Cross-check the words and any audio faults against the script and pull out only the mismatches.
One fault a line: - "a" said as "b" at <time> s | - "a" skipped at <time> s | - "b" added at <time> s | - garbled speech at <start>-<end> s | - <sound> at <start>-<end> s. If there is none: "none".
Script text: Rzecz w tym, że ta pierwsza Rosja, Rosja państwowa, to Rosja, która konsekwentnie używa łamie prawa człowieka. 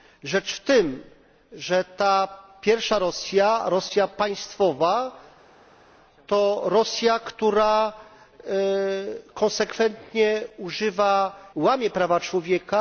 none